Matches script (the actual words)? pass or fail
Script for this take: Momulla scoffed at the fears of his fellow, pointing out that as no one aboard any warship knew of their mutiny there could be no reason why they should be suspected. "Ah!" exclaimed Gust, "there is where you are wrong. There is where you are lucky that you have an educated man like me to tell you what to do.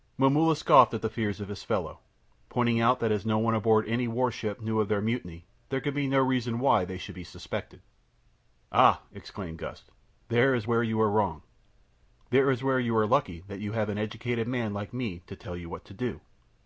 pass